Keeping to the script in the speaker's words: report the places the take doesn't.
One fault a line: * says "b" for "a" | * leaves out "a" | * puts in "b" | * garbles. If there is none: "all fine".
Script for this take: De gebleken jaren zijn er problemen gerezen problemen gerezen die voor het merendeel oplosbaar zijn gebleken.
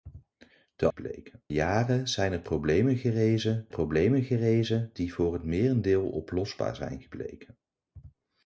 all fine